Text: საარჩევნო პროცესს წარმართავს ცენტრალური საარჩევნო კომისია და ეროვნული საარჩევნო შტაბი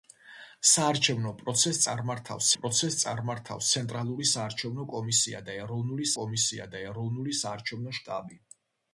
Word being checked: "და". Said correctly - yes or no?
yes